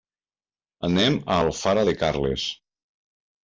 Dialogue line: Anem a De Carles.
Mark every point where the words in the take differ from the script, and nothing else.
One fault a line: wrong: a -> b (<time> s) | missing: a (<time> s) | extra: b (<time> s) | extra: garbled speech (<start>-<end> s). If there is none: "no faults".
extra: Alfara (1.5 s)